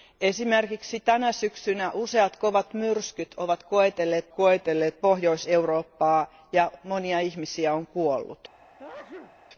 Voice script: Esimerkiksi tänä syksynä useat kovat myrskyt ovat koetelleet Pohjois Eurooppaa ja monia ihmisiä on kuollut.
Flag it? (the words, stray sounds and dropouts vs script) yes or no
yes